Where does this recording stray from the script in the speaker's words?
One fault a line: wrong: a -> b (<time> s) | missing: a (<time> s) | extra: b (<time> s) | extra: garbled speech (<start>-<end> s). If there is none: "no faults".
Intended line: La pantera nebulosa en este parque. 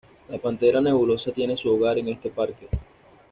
extra: tiene su hogar (1.3 s)